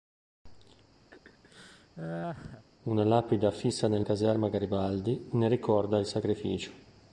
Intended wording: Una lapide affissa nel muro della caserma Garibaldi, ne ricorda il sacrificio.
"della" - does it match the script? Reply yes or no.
no